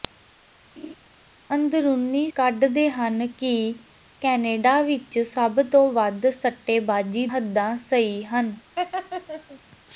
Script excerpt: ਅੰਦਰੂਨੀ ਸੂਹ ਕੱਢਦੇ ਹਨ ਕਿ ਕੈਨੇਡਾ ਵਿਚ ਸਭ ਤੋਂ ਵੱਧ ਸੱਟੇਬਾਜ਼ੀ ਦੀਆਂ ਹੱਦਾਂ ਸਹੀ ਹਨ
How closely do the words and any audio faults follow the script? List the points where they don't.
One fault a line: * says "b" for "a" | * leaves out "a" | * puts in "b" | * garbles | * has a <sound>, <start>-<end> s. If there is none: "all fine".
* has a laugh, 0.8-1.0 s
* leaves out "ਸੂਹ"
* leaves out "ਦੀਆਂ"
* has a laugh, 8.8-9.6 s